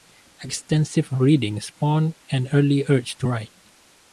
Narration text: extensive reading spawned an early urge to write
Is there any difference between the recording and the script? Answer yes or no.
no